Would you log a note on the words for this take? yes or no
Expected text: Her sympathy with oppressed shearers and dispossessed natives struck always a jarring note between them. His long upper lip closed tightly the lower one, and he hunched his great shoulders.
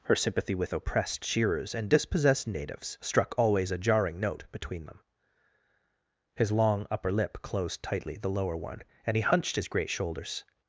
no